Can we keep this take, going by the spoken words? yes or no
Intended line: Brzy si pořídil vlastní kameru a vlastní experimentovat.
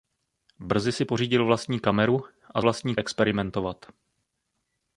yes